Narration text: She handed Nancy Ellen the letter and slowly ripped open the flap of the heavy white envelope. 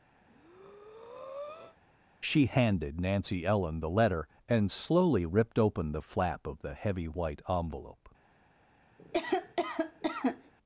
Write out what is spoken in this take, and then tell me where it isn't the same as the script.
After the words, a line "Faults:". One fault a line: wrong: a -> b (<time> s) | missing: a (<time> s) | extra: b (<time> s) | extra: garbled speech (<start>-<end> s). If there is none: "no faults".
She handed Nancy Ellen the letter and slowly ripped open the flap of the heavy white envelope.
Faults:
no faults